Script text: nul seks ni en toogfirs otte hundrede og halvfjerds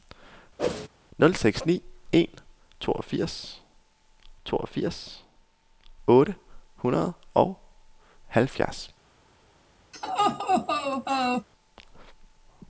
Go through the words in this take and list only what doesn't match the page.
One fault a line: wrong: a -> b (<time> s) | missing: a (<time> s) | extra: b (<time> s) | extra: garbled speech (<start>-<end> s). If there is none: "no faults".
extra: toogfirs (4.4 s)